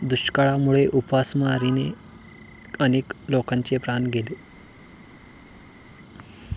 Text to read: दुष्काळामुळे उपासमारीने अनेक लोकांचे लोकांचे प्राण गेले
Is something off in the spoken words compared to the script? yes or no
yes